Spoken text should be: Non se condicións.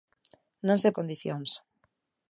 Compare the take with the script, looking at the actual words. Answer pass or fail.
pass